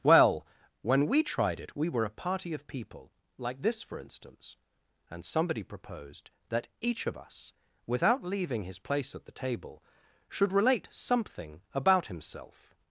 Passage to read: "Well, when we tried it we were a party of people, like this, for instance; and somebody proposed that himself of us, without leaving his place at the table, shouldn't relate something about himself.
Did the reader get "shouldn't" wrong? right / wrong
wrong